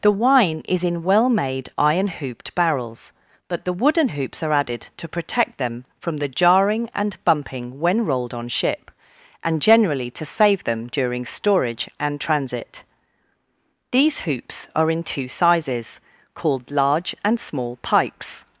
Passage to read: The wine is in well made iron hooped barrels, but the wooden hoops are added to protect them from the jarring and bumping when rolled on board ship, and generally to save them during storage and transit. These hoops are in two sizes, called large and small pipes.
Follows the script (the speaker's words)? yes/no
no